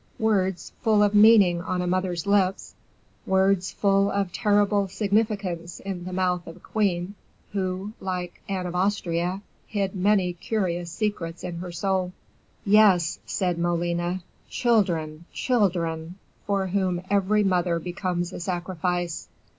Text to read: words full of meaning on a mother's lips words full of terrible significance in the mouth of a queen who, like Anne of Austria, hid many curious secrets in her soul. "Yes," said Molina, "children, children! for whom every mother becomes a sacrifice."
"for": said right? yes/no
yes